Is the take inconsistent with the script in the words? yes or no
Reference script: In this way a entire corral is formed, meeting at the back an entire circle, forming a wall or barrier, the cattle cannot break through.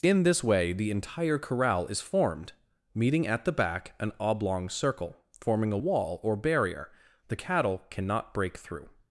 yes